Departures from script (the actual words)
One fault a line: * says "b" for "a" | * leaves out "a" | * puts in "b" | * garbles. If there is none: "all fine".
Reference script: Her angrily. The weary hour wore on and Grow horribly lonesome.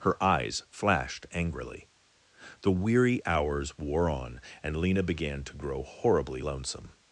* puts in "eyes flashed"
* says "hours" for "hour"
* puts in "Lena began to"